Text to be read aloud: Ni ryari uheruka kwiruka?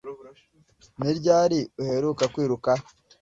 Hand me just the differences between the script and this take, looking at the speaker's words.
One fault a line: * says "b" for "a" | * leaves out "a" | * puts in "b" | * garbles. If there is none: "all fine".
all fine